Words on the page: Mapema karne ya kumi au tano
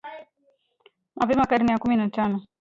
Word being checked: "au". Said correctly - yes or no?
no